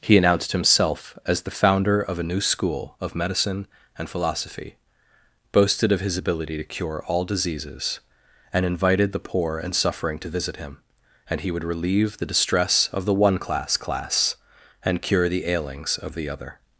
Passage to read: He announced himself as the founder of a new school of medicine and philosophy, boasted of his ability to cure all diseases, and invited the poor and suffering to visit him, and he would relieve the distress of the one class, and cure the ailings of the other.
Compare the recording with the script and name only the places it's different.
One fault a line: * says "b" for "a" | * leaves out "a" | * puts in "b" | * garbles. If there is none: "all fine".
* puts in "class"